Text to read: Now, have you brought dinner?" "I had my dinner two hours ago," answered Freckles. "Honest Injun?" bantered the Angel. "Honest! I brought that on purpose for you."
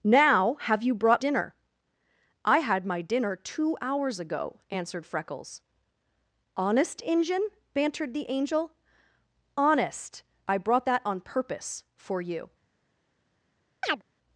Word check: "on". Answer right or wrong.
right